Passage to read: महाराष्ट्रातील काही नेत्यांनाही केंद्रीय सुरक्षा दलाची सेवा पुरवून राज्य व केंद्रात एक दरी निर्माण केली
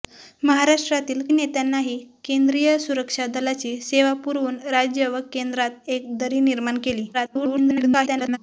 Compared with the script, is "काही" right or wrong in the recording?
wrong